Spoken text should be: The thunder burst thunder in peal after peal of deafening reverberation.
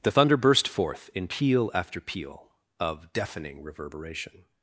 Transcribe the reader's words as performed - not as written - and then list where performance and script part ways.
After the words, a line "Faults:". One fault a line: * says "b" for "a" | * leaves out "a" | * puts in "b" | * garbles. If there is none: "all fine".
The thunder burst forth in peal after peal of deafening reverberation.
Faults:
* says "forth" for "thunder"